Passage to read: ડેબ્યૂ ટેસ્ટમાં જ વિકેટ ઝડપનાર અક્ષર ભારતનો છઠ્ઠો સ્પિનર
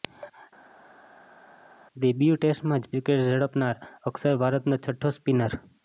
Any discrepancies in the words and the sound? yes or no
no